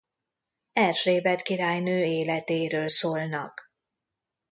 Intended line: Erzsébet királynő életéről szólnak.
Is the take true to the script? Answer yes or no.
yes